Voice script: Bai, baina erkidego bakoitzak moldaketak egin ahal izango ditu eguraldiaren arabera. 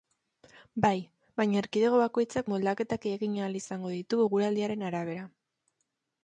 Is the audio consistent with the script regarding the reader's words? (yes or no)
yes